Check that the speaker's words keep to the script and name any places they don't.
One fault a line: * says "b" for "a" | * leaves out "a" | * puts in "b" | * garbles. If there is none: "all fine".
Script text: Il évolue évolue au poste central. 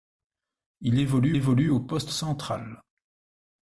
all fine